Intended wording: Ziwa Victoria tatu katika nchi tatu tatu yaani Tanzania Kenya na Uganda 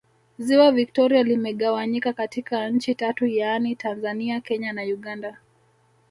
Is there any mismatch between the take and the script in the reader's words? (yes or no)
yes